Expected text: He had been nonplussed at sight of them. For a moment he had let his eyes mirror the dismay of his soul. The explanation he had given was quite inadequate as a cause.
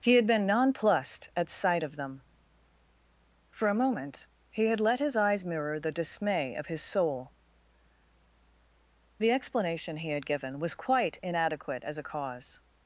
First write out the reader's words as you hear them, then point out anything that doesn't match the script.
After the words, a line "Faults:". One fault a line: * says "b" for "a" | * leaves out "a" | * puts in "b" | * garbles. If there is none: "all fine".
He had been nonplussed at sight of them. For a moment he had let his eyes mirror the dismay of his soul. The explanation he had given was quite inadequate as a cause.
Faults:
all fine